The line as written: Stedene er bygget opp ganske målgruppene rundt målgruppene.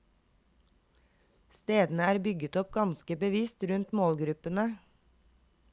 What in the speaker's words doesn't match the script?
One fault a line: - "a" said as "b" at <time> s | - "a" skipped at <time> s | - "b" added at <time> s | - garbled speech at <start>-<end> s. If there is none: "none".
- "målgruppene" said as "bevisst" at 3.2 s